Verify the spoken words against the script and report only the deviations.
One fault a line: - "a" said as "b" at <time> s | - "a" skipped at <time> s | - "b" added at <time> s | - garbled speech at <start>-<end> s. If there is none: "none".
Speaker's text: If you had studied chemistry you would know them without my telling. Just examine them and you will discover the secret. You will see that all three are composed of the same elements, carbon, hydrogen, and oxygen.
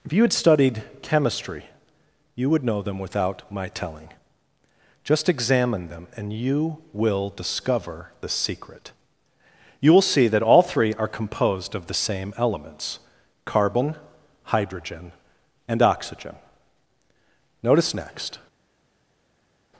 - "Notice next" added at 17.6 s